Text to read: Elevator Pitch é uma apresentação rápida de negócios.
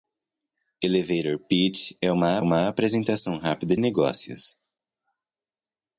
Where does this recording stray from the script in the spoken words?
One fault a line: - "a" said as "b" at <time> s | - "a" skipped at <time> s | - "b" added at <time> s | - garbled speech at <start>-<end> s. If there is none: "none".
- "uma" added at 2.4 s
- "de" skipped at 3.8 s